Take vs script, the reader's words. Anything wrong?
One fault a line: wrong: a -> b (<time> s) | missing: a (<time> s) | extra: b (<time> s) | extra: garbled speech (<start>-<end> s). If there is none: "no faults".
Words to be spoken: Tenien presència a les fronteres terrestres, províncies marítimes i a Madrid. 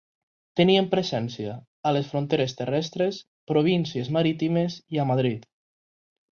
no faults